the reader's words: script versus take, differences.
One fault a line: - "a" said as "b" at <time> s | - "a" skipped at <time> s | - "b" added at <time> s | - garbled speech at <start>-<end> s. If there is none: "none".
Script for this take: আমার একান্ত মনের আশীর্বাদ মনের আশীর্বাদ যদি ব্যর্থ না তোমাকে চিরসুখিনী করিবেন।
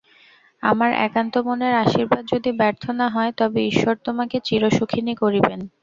- "মনের আশীর্বাদ" skipped at 2.2 s
- "হয় তবে ঈশ্বর" added at 3.1 s